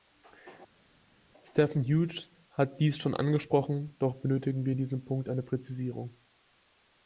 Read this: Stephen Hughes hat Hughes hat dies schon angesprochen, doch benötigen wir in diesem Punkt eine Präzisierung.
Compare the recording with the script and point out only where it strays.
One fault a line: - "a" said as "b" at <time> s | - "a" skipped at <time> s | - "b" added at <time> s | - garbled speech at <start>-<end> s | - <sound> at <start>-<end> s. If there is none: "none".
- "Hughes hat" skipped at 2.8 s